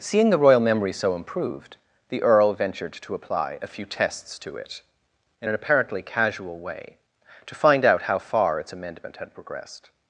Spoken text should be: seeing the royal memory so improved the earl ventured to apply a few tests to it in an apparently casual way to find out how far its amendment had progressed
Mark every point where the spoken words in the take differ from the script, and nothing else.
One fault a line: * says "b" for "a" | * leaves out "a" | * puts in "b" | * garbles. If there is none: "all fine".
all fine